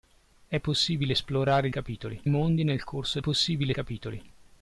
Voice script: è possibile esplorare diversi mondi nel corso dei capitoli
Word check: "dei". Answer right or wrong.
wrong